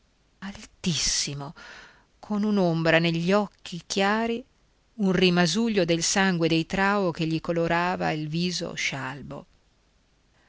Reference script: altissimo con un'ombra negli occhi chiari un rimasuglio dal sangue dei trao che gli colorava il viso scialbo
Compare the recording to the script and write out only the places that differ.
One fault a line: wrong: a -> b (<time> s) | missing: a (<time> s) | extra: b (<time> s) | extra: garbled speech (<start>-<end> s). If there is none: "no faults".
wrong: dal -> del (5.8 s)